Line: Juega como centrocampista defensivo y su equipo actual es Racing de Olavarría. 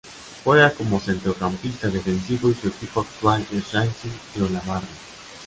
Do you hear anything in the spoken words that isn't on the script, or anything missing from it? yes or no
no